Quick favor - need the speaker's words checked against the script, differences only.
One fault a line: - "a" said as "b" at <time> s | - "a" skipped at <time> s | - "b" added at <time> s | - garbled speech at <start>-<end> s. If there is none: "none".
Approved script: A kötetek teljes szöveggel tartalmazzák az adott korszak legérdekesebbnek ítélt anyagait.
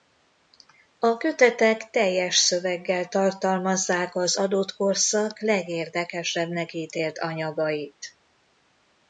none